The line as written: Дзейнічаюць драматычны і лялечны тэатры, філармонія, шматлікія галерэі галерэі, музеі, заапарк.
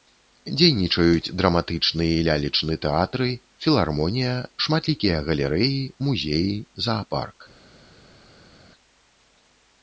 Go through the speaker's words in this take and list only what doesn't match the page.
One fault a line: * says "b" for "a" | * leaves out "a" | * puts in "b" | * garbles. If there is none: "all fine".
* leaves out "галерэі"